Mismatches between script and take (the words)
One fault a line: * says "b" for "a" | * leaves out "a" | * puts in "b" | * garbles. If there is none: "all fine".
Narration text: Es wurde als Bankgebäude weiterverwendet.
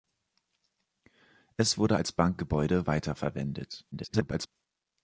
* garbles